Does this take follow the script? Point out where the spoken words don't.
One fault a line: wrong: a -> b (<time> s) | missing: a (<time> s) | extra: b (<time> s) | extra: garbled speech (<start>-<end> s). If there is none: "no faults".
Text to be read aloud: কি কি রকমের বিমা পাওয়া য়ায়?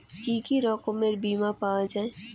no faults